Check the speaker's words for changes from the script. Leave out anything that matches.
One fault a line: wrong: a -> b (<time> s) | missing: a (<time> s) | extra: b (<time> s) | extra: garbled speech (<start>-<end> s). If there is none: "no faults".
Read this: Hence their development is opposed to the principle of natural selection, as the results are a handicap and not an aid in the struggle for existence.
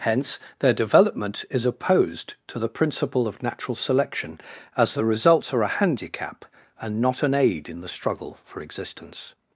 no faults